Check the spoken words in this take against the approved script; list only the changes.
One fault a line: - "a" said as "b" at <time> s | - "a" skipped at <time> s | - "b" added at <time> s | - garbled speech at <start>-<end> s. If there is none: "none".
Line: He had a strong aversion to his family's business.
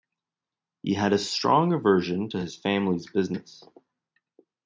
none